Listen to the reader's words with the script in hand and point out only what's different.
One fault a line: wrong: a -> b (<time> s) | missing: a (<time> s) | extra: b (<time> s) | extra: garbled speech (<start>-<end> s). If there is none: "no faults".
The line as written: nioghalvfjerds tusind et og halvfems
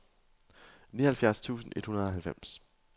extra: hundrede (1.9 s)